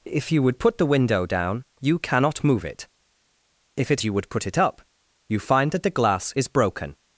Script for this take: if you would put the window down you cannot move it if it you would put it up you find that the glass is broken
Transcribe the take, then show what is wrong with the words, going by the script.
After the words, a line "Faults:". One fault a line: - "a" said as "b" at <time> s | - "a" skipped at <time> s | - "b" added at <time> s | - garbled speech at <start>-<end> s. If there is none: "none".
if you would put the window down you cannot move it if it you would put it up you find that the glass is broken
Faults:
none